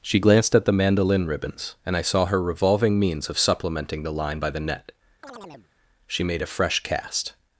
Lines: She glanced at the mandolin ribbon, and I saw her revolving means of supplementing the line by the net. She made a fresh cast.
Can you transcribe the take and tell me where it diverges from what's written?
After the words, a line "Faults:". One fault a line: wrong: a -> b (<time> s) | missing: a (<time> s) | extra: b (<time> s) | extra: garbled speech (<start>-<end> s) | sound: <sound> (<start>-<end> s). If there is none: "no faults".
She glanced at the mandolin ribbons, and I saw her revolving means of supplementing the line by the net. She made a fresh cast.
Faults:
wrong: ribbon -> ribbons (1.3 s)
sound: chirp (5.2-5.7 s)